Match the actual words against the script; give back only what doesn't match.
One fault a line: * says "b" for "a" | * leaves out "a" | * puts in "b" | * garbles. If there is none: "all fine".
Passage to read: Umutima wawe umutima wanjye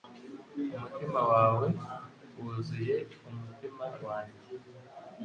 * puts in "wuzuye"